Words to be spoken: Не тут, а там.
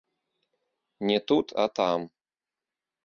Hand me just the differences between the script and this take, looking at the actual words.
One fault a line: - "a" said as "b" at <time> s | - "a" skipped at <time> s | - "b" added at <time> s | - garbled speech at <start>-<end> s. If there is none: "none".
none